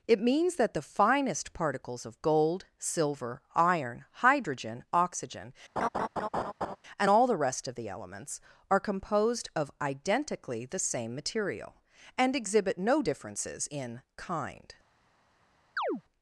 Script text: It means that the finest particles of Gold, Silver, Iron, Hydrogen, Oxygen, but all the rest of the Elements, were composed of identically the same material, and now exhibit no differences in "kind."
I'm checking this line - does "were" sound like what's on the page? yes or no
no